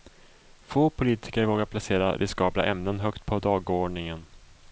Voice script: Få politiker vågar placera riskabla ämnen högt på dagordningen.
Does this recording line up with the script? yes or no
yes